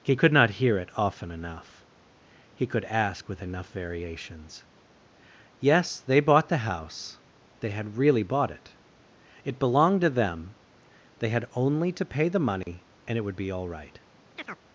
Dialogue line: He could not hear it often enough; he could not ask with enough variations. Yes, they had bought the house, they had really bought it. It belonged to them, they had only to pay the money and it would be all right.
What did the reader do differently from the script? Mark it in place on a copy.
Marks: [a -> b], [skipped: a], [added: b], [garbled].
He could not hear it often enough; he could [skipped: not] ask with enough variations. Yes, they [skipped: had] bought the house, they had really bought it. It belonged to them, they had only to pay the money and it would be all right.